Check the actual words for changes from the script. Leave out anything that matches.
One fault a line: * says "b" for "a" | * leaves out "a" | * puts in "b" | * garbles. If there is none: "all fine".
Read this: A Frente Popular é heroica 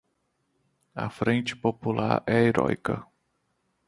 all fine